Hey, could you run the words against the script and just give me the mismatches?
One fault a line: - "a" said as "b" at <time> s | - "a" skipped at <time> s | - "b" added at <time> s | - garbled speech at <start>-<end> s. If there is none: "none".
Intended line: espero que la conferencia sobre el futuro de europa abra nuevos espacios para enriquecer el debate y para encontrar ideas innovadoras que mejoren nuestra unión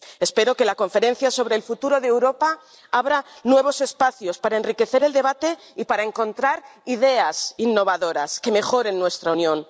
none